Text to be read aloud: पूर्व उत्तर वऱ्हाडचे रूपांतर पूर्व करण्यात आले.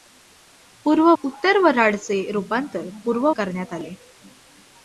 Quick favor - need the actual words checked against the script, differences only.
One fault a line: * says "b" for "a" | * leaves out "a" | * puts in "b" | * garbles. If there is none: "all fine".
all fine